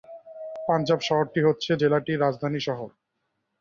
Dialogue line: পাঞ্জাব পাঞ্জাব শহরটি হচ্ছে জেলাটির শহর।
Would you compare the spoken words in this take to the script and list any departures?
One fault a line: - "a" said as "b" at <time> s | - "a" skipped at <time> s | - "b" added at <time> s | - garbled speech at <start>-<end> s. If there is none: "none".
- "পাঞ্জাব" skipped at 1.0 s
- "রাজধানী" added at 2.2 s